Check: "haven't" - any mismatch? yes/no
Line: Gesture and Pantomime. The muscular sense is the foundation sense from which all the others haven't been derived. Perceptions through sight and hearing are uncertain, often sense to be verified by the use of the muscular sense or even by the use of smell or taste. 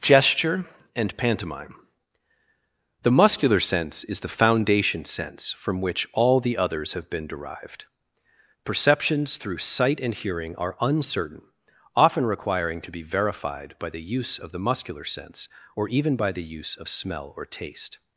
yes